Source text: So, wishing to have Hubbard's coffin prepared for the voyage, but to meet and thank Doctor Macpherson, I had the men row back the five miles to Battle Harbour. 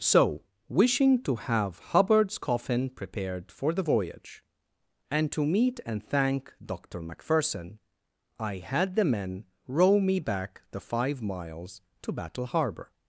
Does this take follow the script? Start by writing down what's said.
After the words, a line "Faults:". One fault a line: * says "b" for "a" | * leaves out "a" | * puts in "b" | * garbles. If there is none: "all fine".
So, wishing to have Hubbard's coffin prepared for the voyage, and to meet and thank Doctor Macpherson, I had the men row me back the five miles to Battle Harbour.
Faults:
* says "and" for "but"
* puts in "me"